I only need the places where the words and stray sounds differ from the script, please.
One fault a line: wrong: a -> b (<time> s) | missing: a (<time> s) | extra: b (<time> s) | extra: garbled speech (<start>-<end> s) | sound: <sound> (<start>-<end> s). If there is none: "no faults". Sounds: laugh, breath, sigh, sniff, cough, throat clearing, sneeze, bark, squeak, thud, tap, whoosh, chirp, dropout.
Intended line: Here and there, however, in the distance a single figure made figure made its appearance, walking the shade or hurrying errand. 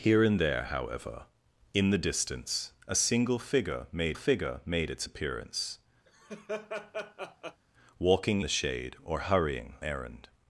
sound: laugh (6.1-7.6 s)